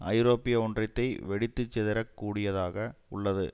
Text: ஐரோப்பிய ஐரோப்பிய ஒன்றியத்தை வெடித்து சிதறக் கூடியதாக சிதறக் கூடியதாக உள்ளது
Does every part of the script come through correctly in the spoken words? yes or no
no